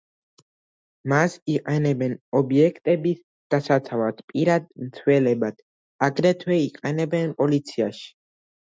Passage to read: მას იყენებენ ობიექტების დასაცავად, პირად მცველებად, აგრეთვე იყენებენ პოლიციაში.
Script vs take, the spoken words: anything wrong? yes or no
no